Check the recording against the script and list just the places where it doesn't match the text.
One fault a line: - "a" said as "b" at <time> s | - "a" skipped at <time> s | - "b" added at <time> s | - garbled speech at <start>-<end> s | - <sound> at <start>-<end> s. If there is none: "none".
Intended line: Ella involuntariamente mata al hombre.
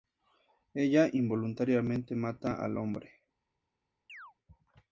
- chirp at 4.1-4.3 s